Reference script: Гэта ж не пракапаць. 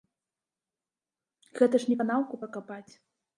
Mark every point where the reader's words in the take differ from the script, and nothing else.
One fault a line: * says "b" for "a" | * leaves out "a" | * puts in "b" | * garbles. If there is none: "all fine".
* puts in "канаўку"